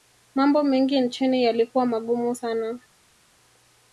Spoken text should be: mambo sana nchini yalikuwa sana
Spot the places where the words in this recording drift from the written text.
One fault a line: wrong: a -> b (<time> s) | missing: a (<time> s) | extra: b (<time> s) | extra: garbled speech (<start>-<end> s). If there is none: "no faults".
wrong: sana -> mengi (0.6 s)
extra: magumu (1.9 s)